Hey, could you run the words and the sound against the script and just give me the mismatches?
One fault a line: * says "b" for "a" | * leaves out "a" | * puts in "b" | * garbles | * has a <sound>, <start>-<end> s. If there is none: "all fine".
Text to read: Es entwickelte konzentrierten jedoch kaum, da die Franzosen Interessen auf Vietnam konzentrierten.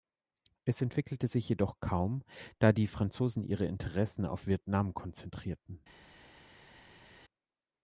* says "sich" for "konzentrierten"
* puts in "ihre"